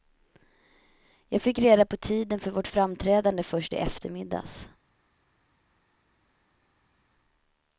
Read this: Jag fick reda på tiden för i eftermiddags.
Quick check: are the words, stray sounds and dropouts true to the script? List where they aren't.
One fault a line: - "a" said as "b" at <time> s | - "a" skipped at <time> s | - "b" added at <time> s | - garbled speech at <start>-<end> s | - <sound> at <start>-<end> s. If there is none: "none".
- "vårt framträdande först" added at 2.5 s